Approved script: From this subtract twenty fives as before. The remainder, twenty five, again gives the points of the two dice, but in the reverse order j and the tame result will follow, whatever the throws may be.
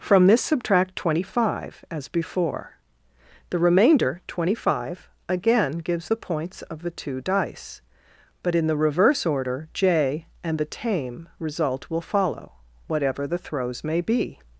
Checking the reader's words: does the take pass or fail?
fail